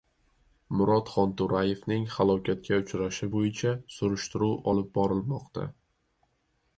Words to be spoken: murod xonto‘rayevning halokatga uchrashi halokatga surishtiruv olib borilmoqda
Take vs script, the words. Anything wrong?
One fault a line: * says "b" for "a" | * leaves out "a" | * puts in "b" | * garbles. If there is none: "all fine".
* says "bo‘yicha" for "halokatga"